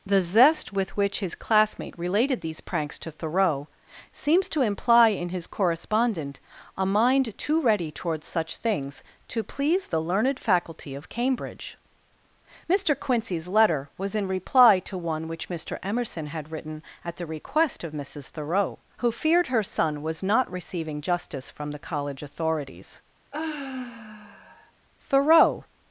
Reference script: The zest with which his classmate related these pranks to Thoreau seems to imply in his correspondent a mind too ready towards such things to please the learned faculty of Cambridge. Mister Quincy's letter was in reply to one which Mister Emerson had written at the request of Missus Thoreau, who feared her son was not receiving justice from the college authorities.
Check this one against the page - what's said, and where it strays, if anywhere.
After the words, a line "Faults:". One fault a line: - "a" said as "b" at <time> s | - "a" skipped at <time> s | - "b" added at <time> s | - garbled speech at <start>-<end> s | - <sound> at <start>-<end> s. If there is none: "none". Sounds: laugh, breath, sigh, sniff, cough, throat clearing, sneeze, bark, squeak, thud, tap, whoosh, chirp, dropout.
The zest with which his classmate related these pranks to Thoreau seems to imply in his correspondent a mind too ready towards such things to please the learned faculty of Cambridge. Mister Quincy's letter was in reply to one which Mister Emerson had written at the request of Missus Thoreau, who feared her son was not receiving justice from the college authorities. Thoreau
Faults:
- sigh at 23.3-24.7 s
- "Thoreau" added at 25.0 s